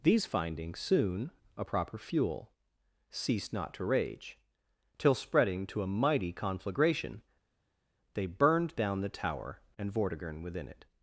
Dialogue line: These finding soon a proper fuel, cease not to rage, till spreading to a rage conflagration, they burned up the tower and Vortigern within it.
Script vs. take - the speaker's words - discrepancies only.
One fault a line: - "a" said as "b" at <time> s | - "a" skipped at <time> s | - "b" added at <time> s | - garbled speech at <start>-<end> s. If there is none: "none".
- "cease" said as "ceased" at 3.1 s
- "rage" said as "mighty" at 5.9 s
- "up" said as "down" at 8.7 s